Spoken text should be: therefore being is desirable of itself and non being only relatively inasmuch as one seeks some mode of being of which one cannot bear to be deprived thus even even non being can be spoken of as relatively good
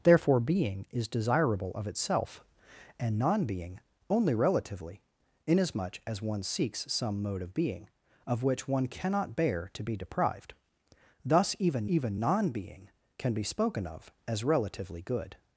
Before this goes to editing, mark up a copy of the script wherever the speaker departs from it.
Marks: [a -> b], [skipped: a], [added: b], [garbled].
therefore being is desirable of itself and non being only relatively inasmuch as one seeks some mode of being of which one cannot bear to be deprived thus even even non being can be spoken of as relatively good